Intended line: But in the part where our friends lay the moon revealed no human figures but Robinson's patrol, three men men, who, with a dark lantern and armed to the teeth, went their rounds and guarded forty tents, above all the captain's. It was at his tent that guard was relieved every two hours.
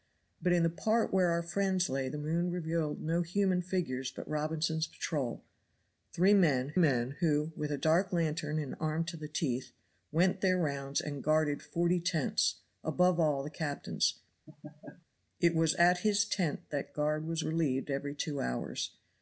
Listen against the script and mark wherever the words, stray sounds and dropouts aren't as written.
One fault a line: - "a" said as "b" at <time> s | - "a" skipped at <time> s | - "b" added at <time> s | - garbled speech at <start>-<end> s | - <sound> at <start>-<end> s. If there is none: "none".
- laugh at 14.5-15.1 s